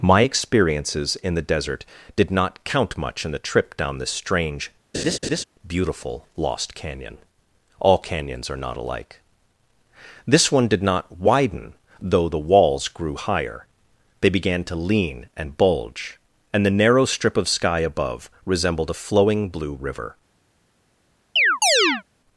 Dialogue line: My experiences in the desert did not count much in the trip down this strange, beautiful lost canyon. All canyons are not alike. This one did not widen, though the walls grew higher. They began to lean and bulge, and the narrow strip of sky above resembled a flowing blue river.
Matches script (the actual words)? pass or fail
pass